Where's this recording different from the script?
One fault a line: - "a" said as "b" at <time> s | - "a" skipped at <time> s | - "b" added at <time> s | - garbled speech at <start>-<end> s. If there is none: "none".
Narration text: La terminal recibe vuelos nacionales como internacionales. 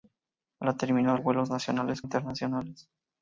- "recibe" skipped at 1.2 s
- "como" skipped at 2.0 s